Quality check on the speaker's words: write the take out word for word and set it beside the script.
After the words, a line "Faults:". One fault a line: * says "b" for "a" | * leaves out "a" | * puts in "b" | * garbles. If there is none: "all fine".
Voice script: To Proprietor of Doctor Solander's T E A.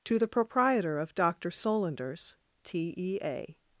To the Proprietor of Doctor Solander's T E A.
Faults:
* puts in "the"